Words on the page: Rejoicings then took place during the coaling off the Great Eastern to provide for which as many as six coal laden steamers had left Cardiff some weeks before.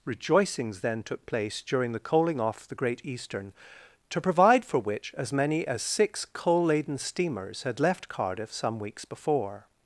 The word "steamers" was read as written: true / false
true